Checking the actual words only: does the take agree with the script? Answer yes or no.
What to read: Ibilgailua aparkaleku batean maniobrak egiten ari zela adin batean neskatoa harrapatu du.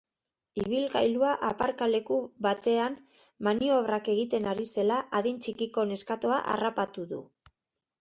no